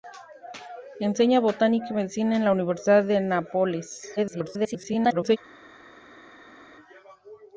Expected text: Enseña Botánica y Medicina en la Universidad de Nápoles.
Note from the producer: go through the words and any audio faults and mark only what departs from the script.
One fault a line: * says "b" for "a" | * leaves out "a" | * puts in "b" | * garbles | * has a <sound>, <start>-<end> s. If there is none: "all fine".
* garbles